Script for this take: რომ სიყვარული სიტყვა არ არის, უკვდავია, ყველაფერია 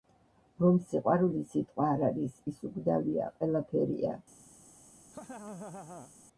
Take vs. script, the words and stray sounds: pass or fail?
fail